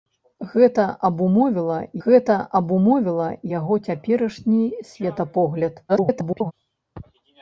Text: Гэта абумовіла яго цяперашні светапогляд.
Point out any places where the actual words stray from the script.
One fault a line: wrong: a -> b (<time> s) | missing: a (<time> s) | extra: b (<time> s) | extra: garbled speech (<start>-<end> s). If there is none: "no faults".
extra: гэта абумовіла (2.0 s)
extra: garbled speech (5.9-6.5 s)